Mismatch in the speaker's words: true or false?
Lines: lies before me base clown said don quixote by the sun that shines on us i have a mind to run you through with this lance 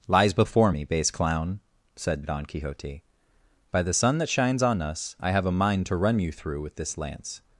false